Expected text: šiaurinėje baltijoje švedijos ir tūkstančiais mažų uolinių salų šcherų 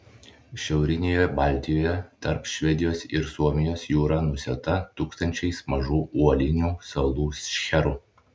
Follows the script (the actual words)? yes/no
no